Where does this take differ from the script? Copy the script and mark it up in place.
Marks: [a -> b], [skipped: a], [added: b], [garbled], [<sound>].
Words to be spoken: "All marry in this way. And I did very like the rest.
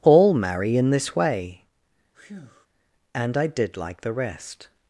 "All marry in this way. [breath] And I did [skipped: very] like the rest.